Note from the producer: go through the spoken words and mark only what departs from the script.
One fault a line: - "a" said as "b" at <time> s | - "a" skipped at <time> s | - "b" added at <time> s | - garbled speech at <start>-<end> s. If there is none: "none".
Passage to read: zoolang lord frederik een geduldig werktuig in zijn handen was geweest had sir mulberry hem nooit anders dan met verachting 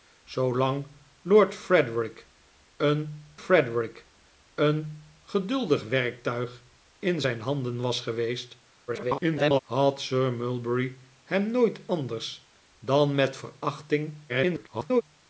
- "frederik een" added at 3.3 s
- garbled speech at 8.9-9.6 s
- garbled speech at 14.3-15.0 s